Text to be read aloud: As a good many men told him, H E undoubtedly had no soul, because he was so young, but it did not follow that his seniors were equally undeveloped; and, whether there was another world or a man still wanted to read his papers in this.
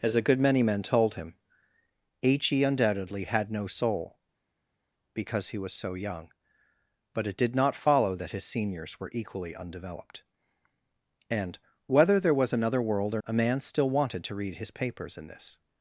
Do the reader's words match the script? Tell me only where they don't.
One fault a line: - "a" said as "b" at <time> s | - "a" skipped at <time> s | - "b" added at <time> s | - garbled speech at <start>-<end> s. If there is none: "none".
none